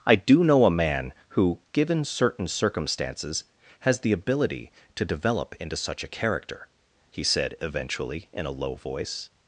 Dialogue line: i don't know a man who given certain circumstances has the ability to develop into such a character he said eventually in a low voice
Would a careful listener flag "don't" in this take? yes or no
yes